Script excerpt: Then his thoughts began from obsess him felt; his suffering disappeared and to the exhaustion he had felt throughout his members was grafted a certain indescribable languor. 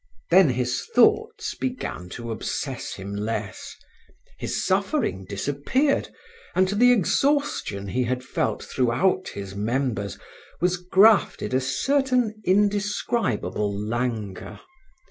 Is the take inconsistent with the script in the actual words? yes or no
yes